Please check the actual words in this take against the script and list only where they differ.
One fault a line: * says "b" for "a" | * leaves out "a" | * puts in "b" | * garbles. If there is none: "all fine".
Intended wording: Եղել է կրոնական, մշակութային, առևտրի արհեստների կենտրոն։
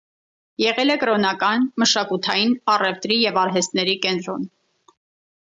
* puts in "և"